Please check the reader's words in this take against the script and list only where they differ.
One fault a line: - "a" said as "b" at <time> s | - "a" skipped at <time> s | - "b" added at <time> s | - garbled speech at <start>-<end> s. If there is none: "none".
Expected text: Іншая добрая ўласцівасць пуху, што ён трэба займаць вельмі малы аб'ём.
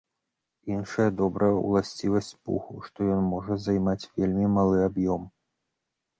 - "трэба" said as "можа" at 3.3 s